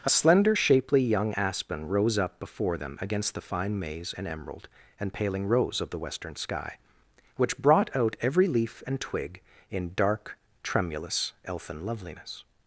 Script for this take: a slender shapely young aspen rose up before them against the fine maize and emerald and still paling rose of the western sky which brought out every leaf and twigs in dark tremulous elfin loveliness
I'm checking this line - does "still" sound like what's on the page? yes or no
no